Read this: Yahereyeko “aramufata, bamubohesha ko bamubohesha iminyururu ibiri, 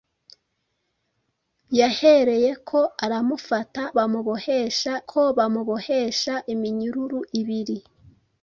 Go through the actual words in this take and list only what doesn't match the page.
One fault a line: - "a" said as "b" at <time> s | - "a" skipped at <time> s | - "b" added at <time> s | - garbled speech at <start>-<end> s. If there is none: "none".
none